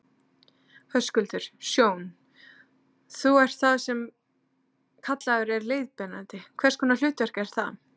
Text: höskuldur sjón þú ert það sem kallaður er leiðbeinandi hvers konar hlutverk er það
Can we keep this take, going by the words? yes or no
yes